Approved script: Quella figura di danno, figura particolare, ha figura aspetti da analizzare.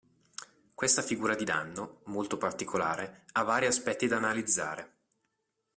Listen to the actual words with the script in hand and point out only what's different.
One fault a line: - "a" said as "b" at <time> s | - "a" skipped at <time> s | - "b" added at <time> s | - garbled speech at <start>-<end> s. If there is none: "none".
- "Quella" said as "Questa" at 0.7 s
- "figura" said as "molto" at 2.1 s
- "figura" said as "vari" at 3.4 s